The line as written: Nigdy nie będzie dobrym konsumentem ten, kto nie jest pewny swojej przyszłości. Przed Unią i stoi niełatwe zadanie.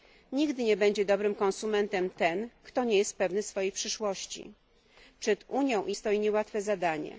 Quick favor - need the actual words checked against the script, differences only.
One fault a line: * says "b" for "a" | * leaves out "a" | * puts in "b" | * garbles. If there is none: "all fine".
all fine